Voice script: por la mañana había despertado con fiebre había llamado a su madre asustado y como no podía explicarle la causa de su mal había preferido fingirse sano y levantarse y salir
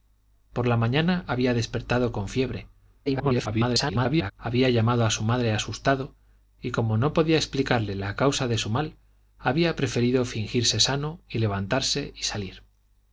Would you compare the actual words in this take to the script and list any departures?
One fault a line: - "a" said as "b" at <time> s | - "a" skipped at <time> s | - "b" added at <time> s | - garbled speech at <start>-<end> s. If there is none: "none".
- garbled speech at 3.1-4.3 s